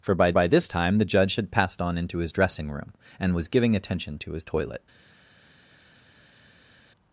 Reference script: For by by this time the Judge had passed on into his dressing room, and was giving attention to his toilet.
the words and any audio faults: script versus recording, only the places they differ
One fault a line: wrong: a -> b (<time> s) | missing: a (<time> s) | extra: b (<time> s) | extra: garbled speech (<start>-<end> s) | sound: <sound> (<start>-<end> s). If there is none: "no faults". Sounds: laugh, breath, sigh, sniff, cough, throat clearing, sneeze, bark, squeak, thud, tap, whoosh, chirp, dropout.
no faults